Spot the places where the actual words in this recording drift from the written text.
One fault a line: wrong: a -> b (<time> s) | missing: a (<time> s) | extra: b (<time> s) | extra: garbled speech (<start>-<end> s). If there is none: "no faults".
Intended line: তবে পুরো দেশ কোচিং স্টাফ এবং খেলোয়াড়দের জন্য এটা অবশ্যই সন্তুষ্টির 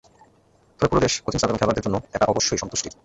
no faults